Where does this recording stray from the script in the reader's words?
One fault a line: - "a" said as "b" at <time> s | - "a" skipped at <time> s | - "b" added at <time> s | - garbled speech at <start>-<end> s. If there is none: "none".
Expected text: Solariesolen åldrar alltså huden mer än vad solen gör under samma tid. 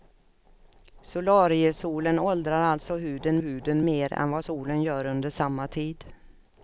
- "huden" added at 3.4 s